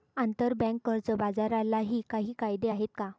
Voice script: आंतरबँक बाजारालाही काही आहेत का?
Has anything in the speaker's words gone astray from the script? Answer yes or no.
yes